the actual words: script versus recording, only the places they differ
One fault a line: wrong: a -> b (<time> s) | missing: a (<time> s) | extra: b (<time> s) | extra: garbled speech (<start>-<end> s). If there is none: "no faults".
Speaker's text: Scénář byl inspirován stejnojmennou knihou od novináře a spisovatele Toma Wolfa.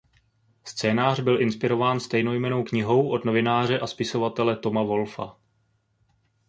no faults